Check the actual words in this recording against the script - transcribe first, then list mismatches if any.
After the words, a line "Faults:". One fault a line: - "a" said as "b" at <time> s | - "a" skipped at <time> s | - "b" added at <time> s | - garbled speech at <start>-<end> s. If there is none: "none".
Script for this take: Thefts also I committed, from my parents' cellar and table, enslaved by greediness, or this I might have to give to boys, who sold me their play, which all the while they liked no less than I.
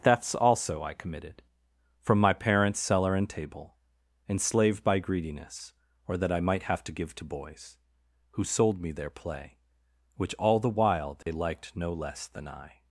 Thefts also I committed, from my parents' cellar and table, enslaved by greediness, or that I might have to give to boys, who sold me their play, which all the while they liked no less than I.
Faults:
- "this" said as "that" at 6.2 s